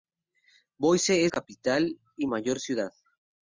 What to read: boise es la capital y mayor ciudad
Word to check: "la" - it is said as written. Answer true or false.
false